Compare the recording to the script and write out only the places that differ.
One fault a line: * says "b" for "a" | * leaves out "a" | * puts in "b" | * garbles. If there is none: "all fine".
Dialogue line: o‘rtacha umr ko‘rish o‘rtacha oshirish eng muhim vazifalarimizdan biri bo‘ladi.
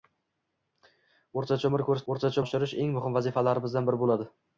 all fine